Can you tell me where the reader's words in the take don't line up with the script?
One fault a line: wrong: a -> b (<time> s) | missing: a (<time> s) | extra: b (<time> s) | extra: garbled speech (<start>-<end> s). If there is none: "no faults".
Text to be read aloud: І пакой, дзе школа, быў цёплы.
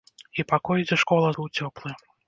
no faults